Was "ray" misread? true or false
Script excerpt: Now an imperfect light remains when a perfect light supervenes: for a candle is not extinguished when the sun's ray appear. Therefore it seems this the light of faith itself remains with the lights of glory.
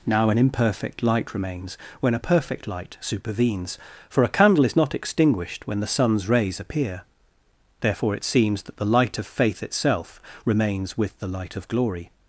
true